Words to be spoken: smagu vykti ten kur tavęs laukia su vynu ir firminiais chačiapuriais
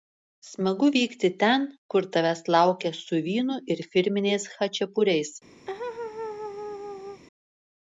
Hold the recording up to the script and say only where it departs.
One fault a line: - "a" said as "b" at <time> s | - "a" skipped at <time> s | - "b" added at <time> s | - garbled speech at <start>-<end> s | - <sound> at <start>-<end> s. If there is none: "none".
- laugh at 5.7-7.2 s